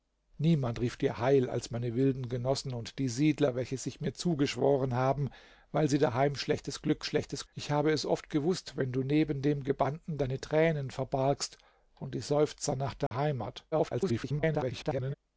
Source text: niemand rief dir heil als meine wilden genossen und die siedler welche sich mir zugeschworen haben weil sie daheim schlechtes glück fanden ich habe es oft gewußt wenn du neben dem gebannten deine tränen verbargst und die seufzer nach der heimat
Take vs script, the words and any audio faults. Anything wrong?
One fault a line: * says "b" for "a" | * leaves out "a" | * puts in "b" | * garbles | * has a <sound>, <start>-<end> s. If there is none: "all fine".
* says "schlechtes" for "fanden"
* has a dropout, 13.1-13.1 s
* garbles